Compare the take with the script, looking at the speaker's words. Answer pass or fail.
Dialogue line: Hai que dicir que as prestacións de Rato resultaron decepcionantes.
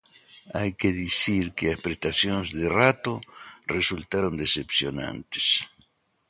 pass